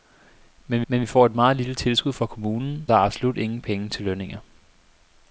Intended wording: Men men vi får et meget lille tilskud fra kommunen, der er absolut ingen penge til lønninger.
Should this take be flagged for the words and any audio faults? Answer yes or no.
no